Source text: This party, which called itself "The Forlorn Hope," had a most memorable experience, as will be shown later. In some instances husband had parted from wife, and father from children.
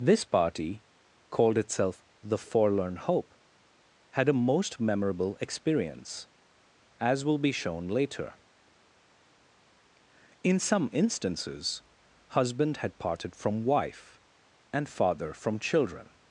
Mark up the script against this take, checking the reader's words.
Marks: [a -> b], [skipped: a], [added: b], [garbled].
This party, [skipped: which] called itself "The Forlorn Hope," had a most memorable experience, as will be shown later. In some instances husband had parted from wife, and father from children.